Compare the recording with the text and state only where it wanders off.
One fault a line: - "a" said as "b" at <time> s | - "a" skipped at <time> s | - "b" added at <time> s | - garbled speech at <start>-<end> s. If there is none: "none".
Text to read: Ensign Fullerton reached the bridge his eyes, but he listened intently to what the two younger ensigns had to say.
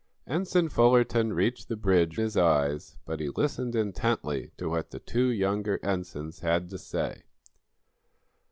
none